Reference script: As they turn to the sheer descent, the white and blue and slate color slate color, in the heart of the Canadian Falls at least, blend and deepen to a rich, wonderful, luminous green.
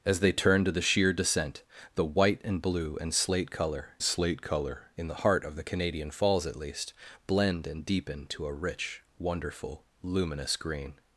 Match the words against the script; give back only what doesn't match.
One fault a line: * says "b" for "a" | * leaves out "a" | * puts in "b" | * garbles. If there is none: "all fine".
all fine